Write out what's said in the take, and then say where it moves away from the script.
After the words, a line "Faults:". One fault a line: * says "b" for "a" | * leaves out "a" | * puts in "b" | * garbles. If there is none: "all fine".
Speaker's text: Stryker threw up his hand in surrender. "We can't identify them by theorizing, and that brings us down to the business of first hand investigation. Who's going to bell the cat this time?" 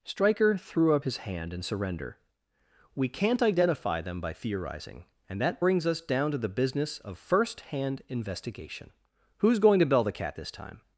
Stryker threw up his hand in surrender. "We can't identify them by theorizing, and that brings us down to the business of first hand investigation. Who's going to bell the cat this time?"
Faults:
all fine